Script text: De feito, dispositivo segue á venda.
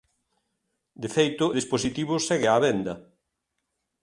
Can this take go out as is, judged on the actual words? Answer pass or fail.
pass